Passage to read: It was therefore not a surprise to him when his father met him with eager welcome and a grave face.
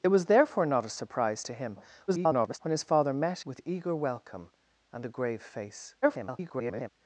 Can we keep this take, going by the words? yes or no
no